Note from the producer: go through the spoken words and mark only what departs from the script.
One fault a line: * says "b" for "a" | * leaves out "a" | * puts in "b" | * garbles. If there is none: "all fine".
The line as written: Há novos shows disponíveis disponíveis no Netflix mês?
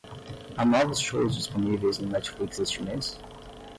* leaves out "disponíveis"
* puts in "este"